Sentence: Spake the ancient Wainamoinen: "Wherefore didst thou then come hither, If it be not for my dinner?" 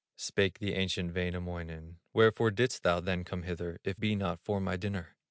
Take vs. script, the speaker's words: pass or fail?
fail